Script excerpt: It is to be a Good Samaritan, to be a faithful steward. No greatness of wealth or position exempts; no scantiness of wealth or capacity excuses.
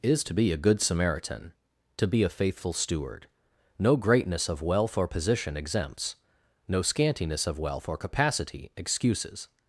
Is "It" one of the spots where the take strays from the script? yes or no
yes